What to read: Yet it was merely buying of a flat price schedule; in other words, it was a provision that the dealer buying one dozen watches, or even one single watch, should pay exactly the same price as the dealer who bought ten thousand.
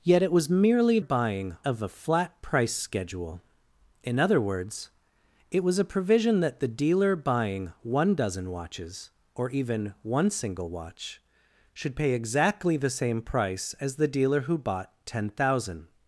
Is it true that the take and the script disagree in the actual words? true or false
false